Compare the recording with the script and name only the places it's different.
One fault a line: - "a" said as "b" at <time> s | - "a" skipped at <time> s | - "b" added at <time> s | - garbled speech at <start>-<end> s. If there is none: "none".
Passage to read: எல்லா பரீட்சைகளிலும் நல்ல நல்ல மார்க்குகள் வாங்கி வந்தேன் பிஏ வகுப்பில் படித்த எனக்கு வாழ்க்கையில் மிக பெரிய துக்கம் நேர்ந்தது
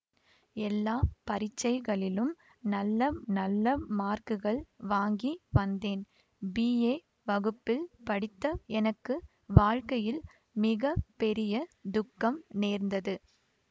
none